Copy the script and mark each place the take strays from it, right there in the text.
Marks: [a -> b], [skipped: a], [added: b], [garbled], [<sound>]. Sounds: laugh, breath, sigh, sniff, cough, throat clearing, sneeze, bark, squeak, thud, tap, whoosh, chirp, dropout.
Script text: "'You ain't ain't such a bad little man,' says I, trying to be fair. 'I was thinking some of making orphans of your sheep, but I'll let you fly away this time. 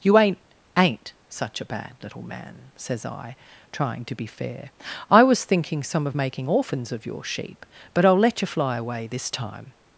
"'You ain't ain't such a bad little man,' says I, trying to be fair. 'I was thinking some of making orphans of your sheep, but I'll let you fly away this time.